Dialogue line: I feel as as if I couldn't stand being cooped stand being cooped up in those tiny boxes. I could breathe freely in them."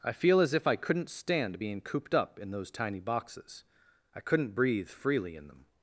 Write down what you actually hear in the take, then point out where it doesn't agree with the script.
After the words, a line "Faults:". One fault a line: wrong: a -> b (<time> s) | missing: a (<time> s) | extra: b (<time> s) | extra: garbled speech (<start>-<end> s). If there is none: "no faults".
I feel as if I couldn't stand being cooped up in those tiny boxes. I couldn't breathe freely in them."
Faults:
missing: as (0.6 s)
missing: stand being cooped (2.1 s)
wrong: could -> couldn't (4.2 s)